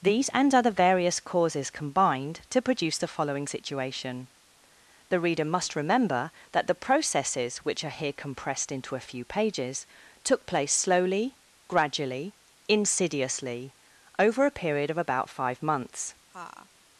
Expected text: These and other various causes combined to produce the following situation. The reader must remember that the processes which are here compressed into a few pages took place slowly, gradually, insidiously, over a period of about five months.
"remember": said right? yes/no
yes